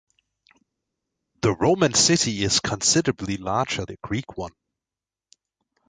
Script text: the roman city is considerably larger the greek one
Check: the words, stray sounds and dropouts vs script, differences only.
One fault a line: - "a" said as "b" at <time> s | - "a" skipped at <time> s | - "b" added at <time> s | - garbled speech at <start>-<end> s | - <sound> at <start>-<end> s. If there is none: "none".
none